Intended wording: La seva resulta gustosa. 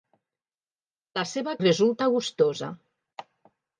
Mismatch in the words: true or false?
false